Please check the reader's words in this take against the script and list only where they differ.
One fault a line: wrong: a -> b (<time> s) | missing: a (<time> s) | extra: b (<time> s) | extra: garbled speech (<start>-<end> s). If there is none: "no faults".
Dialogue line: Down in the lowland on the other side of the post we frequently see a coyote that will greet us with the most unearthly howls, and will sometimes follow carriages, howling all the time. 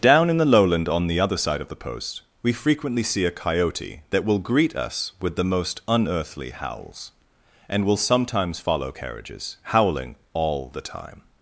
no faults